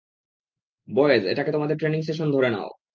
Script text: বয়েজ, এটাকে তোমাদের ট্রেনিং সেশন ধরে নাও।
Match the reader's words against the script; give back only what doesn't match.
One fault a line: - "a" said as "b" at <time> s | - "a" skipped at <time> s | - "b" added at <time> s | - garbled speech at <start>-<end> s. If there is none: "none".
none